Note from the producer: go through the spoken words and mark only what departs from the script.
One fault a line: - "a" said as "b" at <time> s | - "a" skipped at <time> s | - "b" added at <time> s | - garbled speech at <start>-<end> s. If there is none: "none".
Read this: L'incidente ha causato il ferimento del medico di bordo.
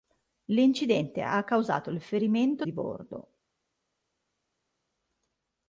- "del medico" skipped at 2.6 s